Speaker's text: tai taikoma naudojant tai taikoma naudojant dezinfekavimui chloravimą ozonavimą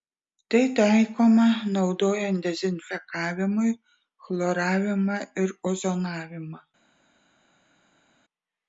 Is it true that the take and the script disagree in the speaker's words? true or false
true